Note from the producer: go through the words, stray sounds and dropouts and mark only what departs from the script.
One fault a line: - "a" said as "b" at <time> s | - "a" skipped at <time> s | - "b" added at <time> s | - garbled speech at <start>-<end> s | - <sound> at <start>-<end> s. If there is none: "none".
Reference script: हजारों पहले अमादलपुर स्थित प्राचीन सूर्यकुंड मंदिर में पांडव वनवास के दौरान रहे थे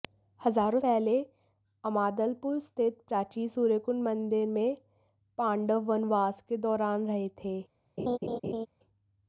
- laugh at 8.0-8.7 s